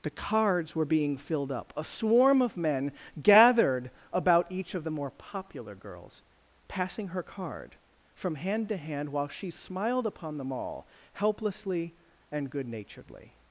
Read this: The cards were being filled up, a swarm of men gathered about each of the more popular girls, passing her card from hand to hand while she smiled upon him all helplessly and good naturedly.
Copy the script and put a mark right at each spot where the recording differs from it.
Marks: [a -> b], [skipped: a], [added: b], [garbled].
The cards were being filled up, a swarm of men gathered about each of the more popular girls, passing her card from hand to hand while she smiled upon [him -> them] all helplessly and good naturedly.